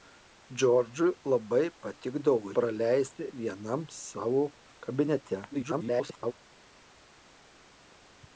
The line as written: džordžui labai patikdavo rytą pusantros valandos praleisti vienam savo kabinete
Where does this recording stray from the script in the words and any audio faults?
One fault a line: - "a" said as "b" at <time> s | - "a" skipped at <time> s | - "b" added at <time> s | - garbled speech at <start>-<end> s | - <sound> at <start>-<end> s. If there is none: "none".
- "rytą pusantros valandos" skipped at 2.5 s
- garbled speech at 5.5-6.3 s